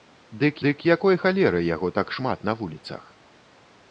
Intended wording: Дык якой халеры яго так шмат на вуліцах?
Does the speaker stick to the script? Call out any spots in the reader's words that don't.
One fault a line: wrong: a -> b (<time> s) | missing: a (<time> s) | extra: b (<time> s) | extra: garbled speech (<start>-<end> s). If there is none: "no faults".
extra: дык (0.7 s)